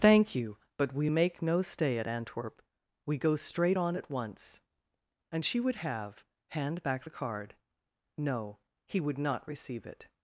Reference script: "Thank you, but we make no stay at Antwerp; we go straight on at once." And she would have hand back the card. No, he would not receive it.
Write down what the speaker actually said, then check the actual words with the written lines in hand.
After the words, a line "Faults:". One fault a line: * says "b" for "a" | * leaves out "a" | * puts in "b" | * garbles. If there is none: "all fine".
"Thank you, but we make no stay at Antwerp; we go straight on at once." And she would have hand back the card. No, he would not receive it.
Faults:
all fine